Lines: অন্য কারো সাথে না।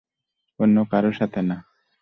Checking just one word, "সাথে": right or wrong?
right